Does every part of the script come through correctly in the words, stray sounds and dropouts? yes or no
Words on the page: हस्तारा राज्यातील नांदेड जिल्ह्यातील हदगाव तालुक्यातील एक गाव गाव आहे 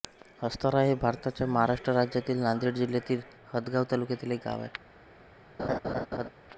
no